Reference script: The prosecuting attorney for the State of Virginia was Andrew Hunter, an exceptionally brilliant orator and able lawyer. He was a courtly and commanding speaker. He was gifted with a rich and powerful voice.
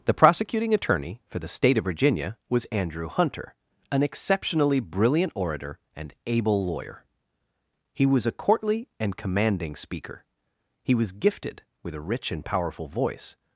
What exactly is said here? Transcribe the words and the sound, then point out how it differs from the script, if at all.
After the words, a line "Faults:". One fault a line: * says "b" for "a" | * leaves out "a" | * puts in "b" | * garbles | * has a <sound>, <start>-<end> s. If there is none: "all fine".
The prosecuting attorney for the State of Virginia was Andrew Hunter, an exceptionally brilliant orator and able lawyer. He was a courtly and commanding speaker. He was gifted with a rich and powerful voice.
Faults:
all fine